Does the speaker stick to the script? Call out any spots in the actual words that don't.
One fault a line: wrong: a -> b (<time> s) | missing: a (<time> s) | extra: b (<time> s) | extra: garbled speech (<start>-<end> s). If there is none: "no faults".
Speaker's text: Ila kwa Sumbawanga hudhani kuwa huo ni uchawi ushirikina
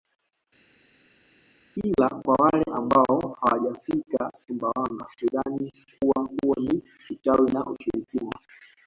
extra: wale ambao hawajafika (2.4 s)
extra: na (7.5 s)